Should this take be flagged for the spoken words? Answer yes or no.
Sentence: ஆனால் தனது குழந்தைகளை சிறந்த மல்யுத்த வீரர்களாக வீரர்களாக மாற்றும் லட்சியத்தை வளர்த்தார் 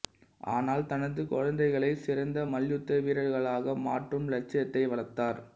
yes